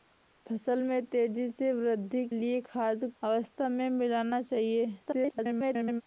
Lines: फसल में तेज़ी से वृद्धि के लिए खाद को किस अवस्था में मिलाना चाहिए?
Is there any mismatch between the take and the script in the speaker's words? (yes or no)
yes